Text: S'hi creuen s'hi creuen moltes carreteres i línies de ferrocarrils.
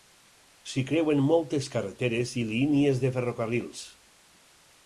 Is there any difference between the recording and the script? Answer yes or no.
yes